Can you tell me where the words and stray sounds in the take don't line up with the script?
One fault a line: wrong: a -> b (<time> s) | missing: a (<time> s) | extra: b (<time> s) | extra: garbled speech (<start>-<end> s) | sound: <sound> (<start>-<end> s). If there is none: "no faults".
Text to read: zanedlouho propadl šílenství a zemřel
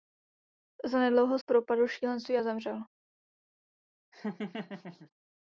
sound: laugh (4.1-5.1 s)